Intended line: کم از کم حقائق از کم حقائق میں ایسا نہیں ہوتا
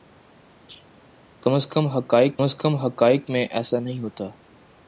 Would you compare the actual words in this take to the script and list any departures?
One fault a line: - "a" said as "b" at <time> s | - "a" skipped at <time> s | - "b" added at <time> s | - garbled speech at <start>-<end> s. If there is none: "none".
none